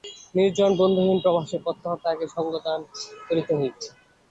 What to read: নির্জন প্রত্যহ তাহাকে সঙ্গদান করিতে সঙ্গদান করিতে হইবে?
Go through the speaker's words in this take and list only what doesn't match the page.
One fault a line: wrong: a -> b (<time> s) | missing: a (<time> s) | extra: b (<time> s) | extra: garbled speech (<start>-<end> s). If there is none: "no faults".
extra: বন্ধুহীন প্রবাসে (0.8 s)
missing: সঙ্গদান করিতে (3.5 s)